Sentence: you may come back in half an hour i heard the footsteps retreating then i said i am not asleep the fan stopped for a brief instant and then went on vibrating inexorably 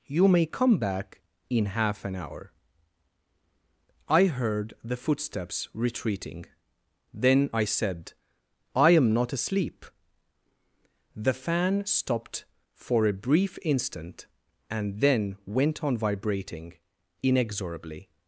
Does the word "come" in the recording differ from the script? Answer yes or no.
no